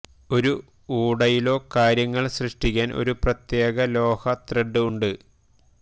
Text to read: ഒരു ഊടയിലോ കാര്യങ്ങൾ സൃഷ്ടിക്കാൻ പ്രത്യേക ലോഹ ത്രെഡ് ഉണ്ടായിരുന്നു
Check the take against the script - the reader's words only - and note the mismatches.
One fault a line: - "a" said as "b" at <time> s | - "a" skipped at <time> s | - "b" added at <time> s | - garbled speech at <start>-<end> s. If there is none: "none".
- "ഒരു" added at 3.0 s
- "ഉണ്ടായിരുന്നു" said as "ഉണ്ട്" at 4.9 s